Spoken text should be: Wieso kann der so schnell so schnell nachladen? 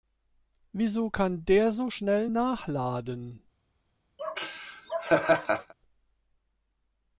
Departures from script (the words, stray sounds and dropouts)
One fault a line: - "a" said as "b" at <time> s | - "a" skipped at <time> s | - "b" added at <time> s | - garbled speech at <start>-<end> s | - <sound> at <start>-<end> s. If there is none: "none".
- "so schnell" skipped at 2.3 s
- laugh at 4.2-5.7 s